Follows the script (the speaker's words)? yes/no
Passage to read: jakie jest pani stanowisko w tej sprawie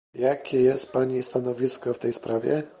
yes